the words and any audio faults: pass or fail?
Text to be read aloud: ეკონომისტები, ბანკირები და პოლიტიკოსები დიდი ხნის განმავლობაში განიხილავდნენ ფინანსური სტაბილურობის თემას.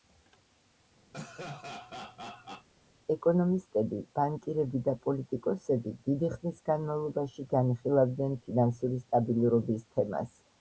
fail